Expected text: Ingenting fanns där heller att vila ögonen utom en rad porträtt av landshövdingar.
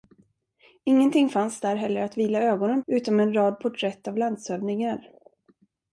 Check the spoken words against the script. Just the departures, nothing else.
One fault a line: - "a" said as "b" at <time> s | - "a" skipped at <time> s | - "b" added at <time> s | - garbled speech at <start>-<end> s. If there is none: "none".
none